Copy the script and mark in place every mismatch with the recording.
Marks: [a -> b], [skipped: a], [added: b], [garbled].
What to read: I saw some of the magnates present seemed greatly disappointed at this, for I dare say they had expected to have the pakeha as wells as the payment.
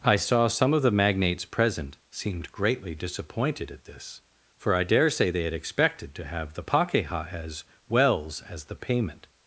I saw some of the magnates present seemed greatly disappointed at this, for I dare say they had expected to have the pakeha as wells as the payment.